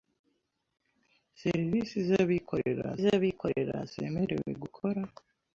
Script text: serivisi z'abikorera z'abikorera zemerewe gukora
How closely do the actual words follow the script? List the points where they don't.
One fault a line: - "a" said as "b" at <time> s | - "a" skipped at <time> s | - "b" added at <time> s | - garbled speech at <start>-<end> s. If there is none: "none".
none